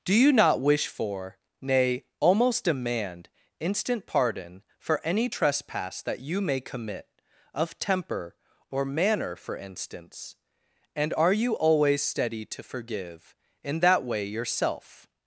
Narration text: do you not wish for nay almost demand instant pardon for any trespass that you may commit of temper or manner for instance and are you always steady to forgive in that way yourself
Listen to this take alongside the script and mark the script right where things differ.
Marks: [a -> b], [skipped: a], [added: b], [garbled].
do you not wish for nay almost demand instant pardon for any trespass that you may commit of temper or manner for instance and are you always steady to forgive in that way yourself